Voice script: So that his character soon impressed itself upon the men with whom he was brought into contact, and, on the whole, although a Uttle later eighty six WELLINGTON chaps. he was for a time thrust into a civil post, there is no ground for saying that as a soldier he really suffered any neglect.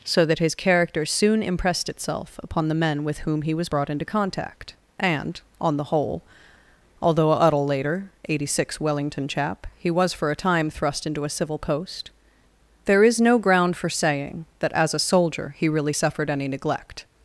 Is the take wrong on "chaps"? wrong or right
wrong